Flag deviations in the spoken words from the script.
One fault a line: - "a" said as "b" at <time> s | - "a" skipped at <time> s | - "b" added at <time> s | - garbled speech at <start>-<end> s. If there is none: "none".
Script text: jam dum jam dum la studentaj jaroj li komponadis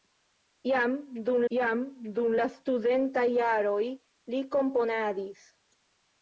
none